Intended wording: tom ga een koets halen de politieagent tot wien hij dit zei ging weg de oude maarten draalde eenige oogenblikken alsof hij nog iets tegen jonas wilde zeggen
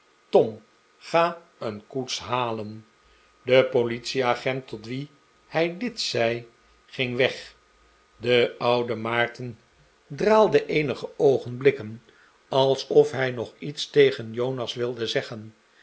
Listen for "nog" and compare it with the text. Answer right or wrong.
right